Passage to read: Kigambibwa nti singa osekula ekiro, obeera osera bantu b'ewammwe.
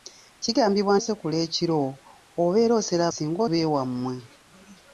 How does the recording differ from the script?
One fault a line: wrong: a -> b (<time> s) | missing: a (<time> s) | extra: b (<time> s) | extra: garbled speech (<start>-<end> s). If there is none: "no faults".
missing: nti singa (0.9 s)
wrong: bantu -> singa (3.1 s)